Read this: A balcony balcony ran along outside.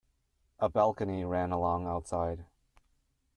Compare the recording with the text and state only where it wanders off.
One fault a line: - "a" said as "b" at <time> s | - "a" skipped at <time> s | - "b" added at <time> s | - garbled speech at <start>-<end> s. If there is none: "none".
- "balcony" skipped at 1.2 s